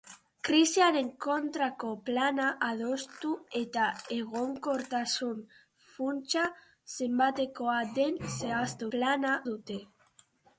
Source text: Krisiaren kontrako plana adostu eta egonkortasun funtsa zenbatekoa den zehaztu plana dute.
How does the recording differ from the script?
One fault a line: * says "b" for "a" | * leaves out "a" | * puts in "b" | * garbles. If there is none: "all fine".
all fine